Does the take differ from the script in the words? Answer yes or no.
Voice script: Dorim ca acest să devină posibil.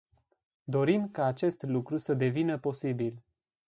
yes